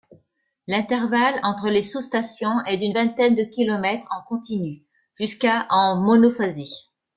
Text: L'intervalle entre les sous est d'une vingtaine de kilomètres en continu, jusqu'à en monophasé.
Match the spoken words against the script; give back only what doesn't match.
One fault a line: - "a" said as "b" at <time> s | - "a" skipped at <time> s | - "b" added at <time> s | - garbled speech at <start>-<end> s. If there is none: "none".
- "stations" added at 2.0 s